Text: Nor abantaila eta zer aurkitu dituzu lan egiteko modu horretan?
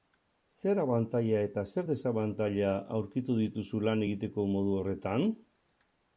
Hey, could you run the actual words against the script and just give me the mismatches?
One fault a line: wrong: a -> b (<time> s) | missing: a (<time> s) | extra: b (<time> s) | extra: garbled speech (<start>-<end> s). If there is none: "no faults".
wrong: Nor -> Zer (0.6 s)
extra: desabantaila (1.9 s)